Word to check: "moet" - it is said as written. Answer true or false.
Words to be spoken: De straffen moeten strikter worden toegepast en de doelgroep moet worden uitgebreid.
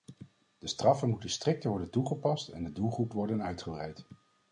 false